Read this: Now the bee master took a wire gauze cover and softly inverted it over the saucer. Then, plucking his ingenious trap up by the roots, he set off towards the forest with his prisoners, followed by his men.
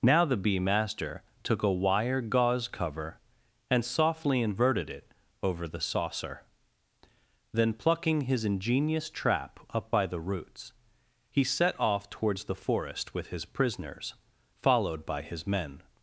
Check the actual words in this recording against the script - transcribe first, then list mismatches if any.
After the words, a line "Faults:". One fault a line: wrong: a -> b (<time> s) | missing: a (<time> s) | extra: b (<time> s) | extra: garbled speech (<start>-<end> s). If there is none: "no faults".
Now the bee master took a wire gauze cover and softly inverted it over the saucer. Then, plucking his ingenious trap up by the roots, he set off towards the forest with his prisoners, followed by his men.
Faults:
no faults